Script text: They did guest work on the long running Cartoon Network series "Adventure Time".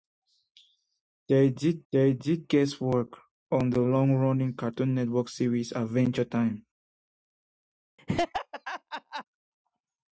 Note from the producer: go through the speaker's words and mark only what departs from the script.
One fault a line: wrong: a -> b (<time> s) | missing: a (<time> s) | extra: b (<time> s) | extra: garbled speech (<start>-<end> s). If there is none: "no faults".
extra: they did (1.9 s)